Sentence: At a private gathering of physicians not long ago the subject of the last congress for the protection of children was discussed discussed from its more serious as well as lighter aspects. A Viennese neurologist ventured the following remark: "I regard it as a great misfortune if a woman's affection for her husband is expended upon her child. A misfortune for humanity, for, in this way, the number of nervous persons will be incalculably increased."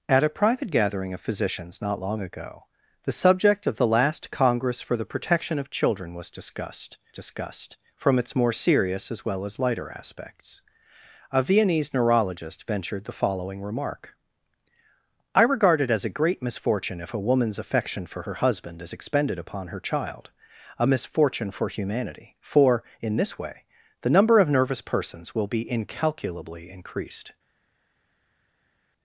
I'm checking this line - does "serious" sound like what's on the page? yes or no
yes